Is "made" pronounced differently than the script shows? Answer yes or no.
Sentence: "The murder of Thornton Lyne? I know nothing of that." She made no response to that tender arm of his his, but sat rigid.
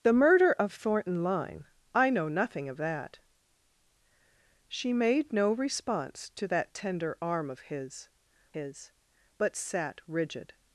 no